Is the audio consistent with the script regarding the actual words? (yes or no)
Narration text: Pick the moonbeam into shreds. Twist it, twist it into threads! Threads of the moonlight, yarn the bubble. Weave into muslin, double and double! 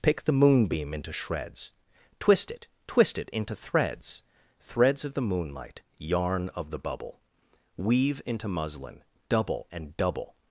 no